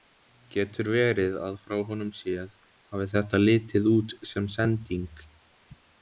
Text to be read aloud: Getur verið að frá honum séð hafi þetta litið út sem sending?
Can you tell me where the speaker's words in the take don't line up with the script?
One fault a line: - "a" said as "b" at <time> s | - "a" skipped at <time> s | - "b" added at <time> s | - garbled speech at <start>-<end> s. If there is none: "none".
none